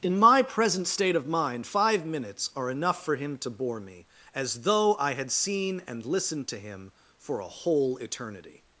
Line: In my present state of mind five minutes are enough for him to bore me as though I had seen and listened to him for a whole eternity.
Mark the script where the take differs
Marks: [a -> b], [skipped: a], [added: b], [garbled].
In my present state of mind five minutes are enough for him to bore me as though I had seen and listened to him for a whole eternity.